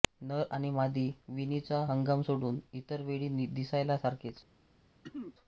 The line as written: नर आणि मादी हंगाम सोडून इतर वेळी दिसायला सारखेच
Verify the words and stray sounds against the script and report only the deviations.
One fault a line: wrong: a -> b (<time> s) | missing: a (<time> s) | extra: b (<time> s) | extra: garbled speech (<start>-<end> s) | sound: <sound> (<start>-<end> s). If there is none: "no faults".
extra: विणीचा (1.3 s)
sound: throat clearing (5.0-5.4 s)